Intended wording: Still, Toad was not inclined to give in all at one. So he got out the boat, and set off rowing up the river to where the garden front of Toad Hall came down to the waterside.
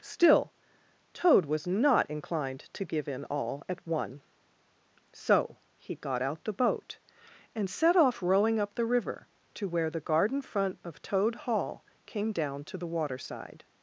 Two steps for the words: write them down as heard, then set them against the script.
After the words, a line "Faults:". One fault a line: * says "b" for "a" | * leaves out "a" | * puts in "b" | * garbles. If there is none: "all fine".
Still, Toad was not inclined to give in all at one. So he got out the boat, and set off rowing up the river to where the garden front of Toad Hall came down to the waterside.
Faults:
all fine